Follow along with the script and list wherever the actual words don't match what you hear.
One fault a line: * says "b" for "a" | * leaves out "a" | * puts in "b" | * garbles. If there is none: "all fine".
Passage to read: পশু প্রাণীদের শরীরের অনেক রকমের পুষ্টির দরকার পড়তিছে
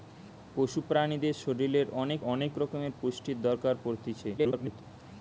* puts in "অনেক"
* garbles